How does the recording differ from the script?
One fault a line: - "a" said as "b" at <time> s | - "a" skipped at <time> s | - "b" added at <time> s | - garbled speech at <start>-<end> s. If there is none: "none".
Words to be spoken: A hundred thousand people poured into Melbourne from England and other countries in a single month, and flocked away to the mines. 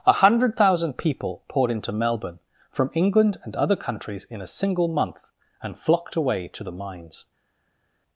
none